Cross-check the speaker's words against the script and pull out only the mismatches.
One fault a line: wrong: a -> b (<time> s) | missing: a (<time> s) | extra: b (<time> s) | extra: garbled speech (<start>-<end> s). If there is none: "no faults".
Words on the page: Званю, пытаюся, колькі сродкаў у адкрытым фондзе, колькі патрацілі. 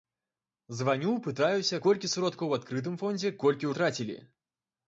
no faults